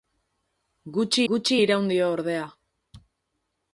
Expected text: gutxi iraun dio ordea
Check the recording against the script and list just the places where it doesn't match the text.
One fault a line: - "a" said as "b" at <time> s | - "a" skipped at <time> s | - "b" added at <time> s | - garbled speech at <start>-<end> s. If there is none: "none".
- "gutxi" added at 1.3 s